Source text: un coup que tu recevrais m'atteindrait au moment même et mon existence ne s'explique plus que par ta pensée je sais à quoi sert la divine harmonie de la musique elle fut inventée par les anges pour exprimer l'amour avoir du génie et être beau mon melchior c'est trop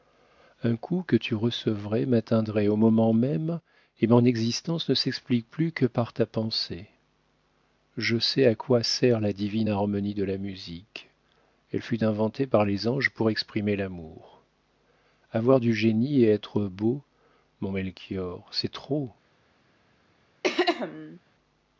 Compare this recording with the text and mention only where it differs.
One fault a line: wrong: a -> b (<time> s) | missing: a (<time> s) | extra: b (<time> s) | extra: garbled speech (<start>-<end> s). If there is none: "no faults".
no faults